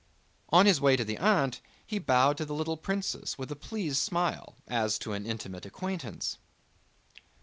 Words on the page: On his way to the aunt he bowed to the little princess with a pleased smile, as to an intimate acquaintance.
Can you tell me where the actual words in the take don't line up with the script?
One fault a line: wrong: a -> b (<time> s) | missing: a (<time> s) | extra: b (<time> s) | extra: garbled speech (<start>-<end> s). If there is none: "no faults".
no faults